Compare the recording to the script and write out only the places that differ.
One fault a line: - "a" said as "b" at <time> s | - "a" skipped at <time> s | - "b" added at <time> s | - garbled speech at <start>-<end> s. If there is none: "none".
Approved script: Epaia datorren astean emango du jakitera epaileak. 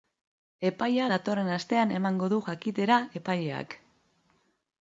none